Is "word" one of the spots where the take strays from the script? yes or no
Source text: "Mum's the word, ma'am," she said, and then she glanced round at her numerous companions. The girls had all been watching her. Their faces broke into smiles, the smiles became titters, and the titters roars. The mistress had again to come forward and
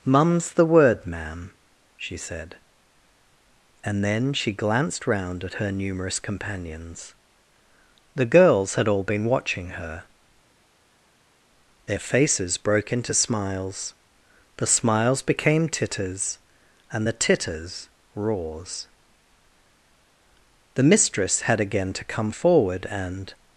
no